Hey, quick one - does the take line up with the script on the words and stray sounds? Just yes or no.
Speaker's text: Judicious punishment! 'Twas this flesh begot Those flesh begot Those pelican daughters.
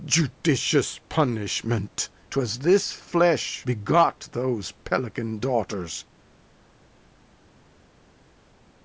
no